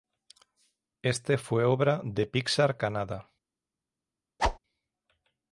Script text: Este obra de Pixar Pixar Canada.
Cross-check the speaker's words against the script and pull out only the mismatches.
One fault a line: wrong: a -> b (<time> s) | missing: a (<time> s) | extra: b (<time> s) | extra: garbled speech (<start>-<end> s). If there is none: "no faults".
extra: fue (1.4 s)
missing: Pixar (2.8 s)